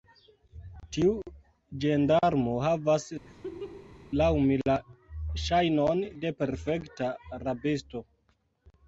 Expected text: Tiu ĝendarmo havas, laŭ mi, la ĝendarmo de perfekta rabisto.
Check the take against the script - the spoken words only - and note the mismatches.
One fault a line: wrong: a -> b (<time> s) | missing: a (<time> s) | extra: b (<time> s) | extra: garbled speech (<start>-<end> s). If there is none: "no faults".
wrong: ĝendarmo -> ŝajnon (5.5 s)